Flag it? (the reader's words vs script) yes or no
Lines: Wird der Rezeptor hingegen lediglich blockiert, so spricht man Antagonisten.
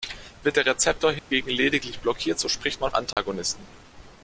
no